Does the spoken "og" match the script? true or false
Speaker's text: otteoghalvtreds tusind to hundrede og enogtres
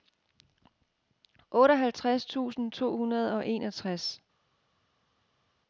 true